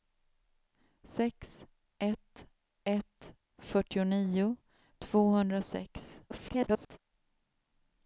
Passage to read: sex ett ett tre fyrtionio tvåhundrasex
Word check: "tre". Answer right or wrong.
wrong